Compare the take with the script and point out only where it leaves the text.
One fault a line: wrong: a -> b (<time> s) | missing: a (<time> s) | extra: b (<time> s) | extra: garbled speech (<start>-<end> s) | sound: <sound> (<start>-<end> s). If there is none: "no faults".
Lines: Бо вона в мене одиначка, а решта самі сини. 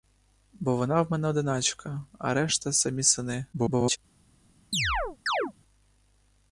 extra: garbled speech (3.5-4.0 s)
sound: chirp (4.7-5.5 s)